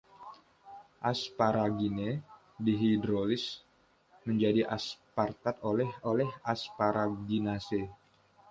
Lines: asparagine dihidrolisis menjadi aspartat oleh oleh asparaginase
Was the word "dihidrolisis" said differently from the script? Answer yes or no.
no